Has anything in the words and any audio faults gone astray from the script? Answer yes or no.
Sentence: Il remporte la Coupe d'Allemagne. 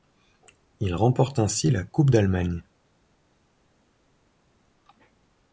yes